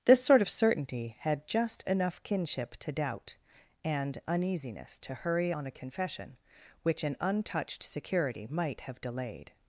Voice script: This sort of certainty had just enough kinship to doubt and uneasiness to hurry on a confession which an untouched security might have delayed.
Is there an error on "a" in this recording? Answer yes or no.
no